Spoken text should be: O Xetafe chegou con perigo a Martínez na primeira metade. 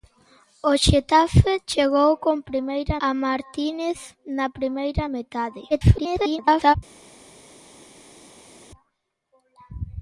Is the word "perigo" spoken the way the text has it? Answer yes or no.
no